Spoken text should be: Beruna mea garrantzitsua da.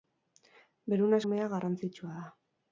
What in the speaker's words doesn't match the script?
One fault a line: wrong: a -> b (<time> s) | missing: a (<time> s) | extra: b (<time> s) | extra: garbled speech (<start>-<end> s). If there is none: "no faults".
no faults